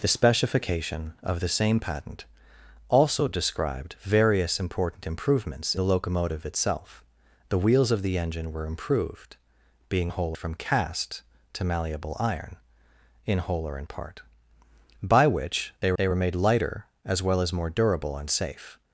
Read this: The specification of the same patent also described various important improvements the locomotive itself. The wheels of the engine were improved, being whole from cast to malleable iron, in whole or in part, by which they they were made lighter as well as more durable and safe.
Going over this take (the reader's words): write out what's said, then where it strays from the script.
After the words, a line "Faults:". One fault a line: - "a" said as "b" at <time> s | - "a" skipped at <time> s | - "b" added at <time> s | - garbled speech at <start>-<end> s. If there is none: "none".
The specification of the same patent also described various important improvements the locomotive itself. The wheels of the engine were improved, being whole from cast to malleable iron, in whole or in part, by which they they were made lighter as well as more durable and safe.
Faults:
none